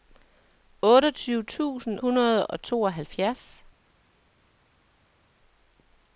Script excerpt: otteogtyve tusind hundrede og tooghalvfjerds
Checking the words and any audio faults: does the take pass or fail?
pass